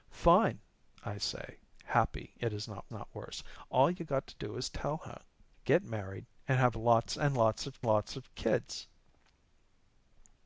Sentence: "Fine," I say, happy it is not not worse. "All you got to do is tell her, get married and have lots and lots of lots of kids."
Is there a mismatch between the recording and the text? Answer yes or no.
no